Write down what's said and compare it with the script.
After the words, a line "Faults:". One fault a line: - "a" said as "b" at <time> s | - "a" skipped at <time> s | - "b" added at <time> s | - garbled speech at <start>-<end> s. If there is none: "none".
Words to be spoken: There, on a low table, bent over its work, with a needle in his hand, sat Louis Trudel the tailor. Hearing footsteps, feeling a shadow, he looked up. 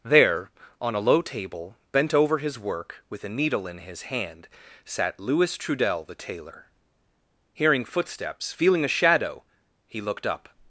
There, on a low table, bent over his work, with a needle in his hand, sat Louis Trudel the tailor. Hearing footsteps, feeling a shadow, he looked up.
Faults:
- "its" said as "his" at 2.4 s